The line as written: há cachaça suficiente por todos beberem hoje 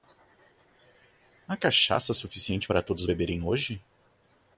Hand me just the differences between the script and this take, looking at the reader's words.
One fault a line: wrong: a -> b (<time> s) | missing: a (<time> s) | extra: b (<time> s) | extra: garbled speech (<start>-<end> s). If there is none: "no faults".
wrong: por -> para (2.6 s)